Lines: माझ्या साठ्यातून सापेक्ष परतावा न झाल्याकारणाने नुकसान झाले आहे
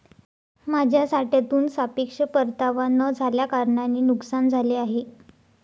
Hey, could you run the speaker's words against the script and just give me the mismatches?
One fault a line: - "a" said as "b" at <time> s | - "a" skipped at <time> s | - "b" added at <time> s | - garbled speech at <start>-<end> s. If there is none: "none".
none